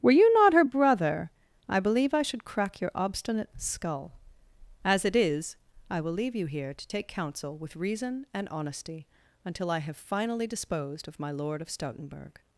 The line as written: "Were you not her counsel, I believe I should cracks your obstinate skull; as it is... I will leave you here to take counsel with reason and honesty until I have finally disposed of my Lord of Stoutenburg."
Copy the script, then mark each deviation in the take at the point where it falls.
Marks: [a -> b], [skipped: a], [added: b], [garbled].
"Were you not her [counsel, -> brother] I believe I should [cracks -> crack] your obstinate skull; as it is... I will leave you here to take counsel with reason and honesty until I have finally disposed of my Lord of Stoutenburg."